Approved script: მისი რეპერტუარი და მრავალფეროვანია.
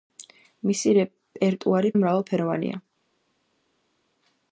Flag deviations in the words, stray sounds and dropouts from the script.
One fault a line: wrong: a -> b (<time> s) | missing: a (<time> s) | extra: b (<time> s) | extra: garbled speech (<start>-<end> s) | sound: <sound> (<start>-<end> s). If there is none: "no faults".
no faults